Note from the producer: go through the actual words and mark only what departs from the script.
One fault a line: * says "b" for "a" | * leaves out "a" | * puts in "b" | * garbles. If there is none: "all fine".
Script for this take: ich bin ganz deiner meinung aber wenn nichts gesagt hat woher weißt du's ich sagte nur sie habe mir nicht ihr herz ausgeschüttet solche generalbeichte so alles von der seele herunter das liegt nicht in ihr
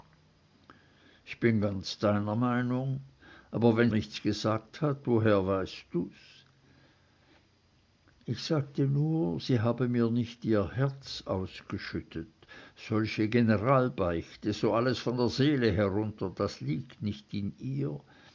all fine